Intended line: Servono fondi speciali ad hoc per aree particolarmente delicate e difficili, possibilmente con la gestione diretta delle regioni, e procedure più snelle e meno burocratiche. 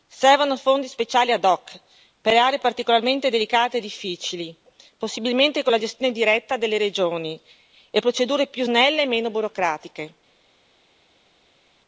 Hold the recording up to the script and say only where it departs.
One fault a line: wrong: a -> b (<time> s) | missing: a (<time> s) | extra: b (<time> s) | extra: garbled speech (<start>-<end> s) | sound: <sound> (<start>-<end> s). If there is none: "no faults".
no faults